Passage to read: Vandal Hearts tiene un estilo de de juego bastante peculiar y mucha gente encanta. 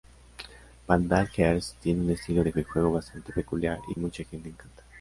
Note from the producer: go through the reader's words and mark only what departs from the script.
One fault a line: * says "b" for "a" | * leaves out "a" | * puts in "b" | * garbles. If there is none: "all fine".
all fine